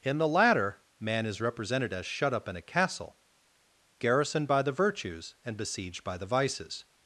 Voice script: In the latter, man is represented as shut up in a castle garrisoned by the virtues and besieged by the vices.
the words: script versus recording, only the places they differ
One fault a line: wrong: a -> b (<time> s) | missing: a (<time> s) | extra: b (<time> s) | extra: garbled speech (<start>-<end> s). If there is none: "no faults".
no faults